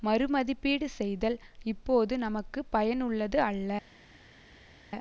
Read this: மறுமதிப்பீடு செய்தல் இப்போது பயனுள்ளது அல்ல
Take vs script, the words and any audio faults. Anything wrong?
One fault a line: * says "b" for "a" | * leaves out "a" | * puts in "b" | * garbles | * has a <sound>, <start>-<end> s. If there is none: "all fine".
* puts in "நமக்கு"